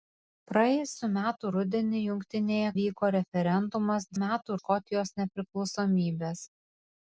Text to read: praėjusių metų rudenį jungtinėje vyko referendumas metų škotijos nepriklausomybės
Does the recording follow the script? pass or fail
pass